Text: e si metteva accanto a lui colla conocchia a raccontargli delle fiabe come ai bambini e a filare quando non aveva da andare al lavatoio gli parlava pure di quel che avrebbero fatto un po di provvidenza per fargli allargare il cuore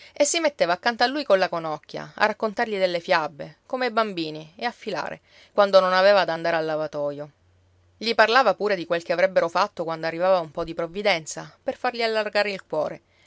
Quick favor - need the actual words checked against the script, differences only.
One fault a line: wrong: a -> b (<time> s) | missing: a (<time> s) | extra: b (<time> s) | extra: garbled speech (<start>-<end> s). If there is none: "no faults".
extra: quando arrivava (9.8 s)